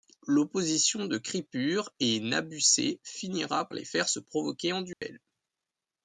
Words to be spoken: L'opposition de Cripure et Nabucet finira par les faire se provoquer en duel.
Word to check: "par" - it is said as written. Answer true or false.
false